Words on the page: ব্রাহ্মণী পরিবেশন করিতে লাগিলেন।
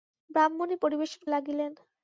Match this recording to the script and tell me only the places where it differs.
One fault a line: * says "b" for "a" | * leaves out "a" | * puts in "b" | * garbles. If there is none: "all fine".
* leaves out "করিতে"